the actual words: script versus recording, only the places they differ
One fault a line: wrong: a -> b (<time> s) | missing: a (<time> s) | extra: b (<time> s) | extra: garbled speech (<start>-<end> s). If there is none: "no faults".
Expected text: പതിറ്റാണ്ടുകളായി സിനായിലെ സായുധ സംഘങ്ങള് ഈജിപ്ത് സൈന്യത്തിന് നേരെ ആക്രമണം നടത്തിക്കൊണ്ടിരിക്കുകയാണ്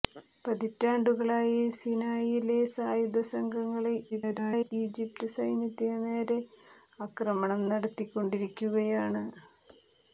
extra: garbled speech (4.1-4.7 s)